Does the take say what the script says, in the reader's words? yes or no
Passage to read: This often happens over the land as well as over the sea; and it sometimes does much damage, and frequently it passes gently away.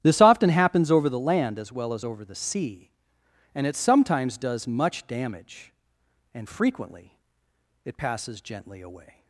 yes